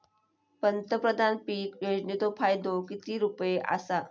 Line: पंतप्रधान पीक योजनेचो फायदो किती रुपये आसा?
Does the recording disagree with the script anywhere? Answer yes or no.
no